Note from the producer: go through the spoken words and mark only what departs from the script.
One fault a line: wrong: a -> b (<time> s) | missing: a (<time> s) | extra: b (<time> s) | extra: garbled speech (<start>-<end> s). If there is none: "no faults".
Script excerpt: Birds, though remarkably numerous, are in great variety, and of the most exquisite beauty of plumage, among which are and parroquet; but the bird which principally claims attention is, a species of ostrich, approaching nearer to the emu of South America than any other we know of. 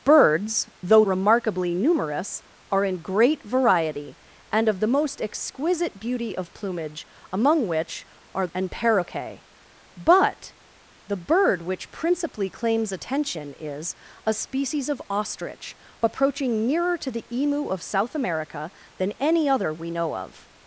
no faults